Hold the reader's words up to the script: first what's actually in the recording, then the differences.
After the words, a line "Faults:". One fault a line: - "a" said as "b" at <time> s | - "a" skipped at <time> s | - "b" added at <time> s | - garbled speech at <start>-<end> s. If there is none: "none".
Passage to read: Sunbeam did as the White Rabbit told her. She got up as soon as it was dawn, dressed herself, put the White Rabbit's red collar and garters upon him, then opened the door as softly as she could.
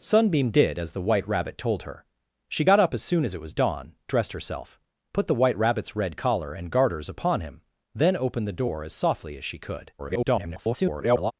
Sunbeam did as the White Rabbit told her. She got up as soon as it was dawn, dressed herself, put the White Rabbit's red collar and garters upon him, then opened the door as softly as she could. [garbled]
Faults:
- garbled speech at 10.0-11.3 s